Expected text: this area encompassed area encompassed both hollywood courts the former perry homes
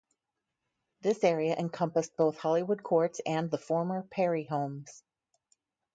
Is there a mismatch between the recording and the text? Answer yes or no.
yes